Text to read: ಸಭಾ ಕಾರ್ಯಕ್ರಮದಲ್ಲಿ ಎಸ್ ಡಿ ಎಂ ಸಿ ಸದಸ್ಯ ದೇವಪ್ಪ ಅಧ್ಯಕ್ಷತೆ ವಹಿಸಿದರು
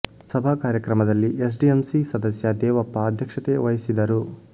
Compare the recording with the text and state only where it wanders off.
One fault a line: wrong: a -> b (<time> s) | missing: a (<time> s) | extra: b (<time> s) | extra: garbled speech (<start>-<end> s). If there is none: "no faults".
no faults